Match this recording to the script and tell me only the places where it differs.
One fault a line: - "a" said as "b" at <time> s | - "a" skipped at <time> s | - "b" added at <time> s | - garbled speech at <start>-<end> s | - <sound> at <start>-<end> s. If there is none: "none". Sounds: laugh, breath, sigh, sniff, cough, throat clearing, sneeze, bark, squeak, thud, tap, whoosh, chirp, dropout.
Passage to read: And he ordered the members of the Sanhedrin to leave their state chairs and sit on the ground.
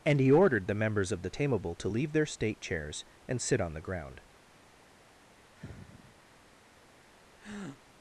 - "Sanhedrin" said as "Tameable" at 1.3 s
- sigh at 5.6-6.2 s
- breath at 7.4-7.8 s